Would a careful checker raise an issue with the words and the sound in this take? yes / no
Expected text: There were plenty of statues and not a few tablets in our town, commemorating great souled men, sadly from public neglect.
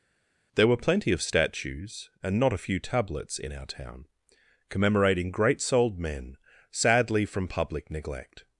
no